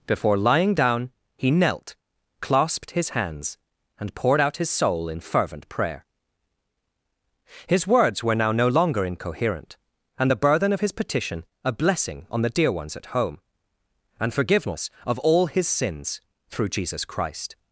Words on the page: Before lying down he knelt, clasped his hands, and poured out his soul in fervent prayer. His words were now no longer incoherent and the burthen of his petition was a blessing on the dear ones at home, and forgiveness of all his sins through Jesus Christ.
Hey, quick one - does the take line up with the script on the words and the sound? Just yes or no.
no